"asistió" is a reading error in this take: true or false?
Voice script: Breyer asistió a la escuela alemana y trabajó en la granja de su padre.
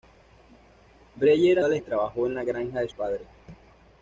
true